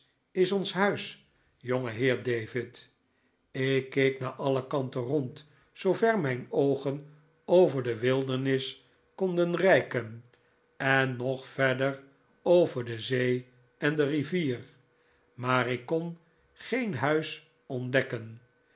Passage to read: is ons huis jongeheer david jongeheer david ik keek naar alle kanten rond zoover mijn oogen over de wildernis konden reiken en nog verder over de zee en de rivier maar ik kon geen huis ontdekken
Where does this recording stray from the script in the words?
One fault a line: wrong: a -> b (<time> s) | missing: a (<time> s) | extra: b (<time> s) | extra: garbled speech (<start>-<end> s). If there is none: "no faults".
missing: jongeheer david (2.9 s)